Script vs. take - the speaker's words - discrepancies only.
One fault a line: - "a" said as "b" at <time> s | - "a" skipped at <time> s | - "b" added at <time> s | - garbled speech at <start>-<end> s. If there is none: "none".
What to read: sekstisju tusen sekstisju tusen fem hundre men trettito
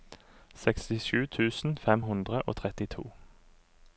- "sekstisju tusen" skipped at 1.8 s
- "men" said as "og" at 2.4 s